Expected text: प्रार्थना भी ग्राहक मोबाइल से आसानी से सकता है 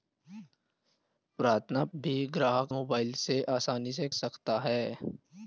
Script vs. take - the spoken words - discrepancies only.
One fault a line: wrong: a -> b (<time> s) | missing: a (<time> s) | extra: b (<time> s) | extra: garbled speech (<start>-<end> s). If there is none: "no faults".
no faults